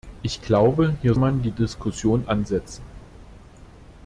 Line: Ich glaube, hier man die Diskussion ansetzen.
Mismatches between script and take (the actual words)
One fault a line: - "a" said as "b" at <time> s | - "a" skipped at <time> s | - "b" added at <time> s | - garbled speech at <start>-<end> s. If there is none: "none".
none